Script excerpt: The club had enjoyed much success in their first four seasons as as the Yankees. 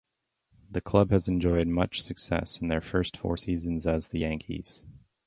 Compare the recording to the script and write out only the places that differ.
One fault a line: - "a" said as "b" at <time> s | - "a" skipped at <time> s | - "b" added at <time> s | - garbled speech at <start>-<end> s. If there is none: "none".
- "had" said as "has" at 1.1 s
- "as" skipped at 4.1 s